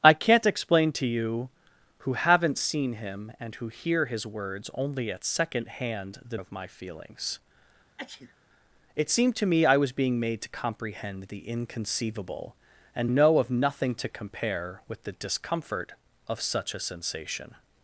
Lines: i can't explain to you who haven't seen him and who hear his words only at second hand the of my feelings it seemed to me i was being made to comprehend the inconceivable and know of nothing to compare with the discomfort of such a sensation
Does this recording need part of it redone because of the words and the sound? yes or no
yes